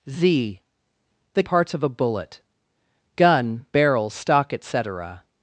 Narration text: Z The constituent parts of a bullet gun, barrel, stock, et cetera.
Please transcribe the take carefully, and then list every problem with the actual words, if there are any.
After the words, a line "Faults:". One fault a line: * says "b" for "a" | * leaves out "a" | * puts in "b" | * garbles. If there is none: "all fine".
Z The parts of a bullet gun, barrel, stock, et cetera.
Faults:
* leaves out "constituent"